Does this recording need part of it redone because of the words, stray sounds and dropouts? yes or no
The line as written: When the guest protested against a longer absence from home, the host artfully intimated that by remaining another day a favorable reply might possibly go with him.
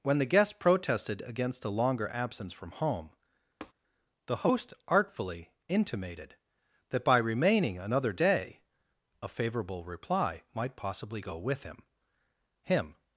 yes